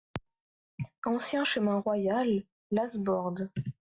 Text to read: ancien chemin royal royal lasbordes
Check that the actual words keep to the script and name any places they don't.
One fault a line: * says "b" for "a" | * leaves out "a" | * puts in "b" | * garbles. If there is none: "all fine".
* leaves out "royal"